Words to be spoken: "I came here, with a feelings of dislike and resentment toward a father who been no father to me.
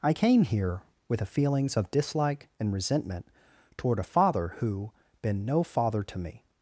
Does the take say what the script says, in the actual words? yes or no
yes